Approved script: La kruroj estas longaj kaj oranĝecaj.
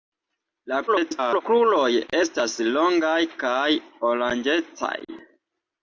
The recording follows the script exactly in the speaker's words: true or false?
false